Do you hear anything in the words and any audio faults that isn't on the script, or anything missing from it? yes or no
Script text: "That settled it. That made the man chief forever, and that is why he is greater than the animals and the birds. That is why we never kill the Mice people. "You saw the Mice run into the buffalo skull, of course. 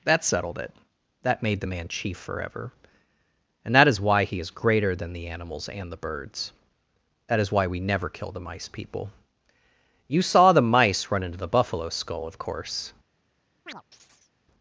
yes